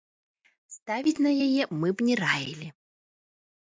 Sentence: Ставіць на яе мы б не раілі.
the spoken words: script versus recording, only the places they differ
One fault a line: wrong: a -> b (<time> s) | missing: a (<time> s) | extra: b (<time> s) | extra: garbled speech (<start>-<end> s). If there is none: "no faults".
no faults